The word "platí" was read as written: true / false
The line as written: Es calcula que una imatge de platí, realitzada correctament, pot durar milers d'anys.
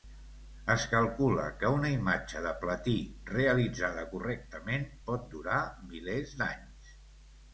true